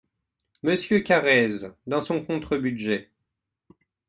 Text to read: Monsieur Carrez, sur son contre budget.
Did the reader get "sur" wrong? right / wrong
wrong